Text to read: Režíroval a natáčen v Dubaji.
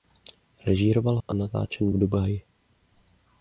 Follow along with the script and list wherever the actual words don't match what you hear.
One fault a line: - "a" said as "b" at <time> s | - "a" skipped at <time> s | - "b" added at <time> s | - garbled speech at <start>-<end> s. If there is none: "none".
none